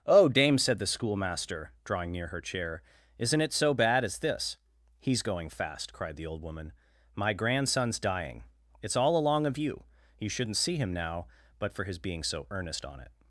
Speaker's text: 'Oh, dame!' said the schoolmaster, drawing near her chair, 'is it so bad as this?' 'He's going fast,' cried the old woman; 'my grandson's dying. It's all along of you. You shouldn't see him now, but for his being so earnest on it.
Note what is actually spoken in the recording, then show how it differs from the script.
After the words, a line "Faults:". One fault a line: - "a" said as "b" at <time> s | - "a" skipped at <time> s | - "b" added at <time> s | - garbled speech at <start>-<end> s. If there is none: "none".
'Oh, dame!' said the schoolmaster, drawing near her chair, 'isn't it so bad as this?' 'He's going fast,' cried the old woman; 'my grandson's dying. It's all along of you. You shouldn't see him now, but for his being so earnest on it.
Faults:
- "is" said as "isn't" at 3.2 s